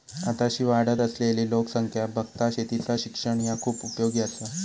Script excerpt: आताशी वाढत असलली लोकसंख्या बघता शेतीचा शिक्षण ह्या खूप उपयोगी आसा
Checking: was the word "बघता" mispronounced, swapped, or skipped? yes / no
no